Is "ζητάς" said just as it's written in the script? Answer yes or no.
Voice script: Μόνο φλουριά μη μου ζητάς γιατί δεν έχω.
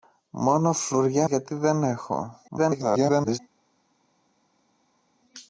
no